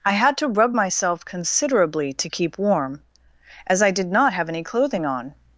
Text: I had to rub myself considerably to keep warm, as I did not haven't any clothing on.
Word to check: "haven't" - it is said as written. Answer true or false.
false